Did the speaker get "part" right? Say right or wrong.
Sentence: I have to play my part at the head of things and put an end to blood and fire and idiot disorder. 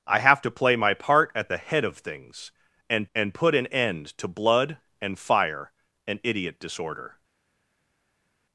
right